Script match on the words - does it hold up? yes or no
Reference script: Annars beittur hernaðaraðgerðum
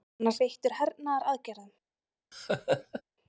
yes